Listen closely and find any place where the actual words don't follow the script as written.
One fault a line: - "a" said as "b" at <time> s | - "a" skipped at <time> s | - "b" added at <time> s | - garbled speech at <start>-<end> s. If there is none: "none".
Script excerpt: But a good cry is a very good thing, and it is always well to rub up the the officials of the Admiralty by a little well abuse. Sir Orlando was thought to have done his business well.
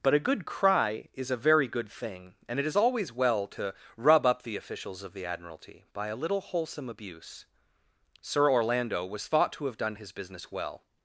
- "the" skipped at 4.5 s
- "well" said as "wholesome" at 6.4 s